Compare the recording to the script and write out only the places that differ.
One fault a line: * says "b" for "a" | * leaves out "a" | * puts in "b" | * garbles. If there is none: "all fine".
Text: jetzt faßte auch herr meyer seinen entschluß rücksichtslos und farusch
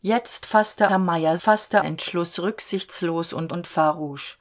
* leaves out "auch"
* says "faßte" for "seinen"
* puts in "und"